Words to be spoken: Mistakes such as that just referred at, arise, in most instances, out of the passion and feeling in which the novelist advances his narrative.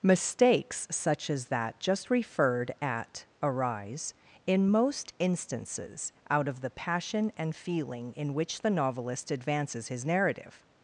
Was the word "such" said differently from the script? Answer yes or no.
no